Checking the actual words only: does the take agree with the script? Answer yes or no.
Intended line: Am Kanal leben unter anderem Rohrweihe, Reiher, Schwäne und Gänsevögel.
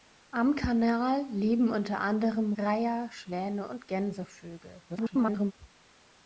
no